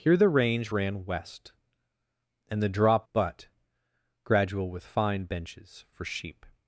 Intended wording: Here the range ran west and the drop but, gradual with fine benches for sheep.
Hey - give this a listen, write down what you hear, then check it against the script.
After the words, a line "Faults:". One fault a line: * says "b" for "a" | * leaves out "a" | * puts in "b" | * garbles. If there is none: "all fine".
Here the range ran west and the drop but, gradual with fine benches for sheep.
Faults:
all fine